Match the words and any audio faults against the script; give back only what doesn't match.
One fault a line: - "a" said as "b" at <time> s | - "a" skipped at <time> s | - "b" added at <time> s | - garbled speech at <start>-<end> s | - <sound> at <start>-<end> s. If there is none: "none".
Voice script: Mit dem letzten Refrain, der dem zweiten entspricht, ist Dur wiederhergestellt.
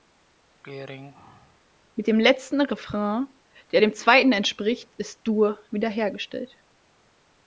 - throat clearing at 0.6-1.6 s